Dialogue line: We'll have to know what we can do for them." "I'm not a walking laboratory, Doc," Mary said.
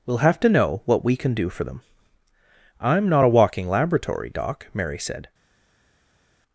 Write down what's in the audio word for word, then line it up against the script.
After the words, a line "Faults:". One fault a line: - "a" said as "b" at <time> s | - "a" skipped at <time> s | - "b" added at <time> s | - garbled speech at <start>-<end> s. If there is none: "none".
We'll have to know what we can do for them." "I'm not a walking laboratory, Doc," Mary said.
Faults:
none